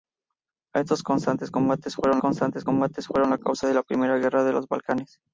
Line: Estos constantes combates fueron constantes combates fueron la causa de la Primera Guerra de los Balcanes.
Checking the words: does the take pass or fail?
pass